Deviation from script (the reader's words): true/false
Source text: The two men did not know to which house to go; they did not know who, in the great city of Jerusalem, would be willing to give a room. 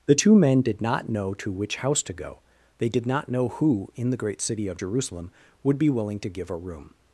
false